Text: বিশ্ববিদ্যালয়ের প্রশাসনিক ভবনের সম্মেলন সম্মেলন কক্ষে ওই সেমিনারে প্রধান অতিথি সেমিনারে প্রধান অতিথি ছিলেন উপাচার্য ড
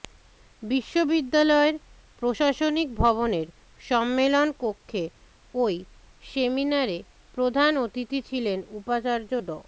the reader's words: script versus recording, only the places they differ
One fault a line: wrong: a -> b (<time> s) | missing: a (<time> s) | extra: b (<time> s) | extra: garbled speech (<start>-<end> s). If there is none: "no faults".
missing: সম্মেলন (4.5 s)
missing: সেমিনারে প্রধান অতিথি (8.2 s)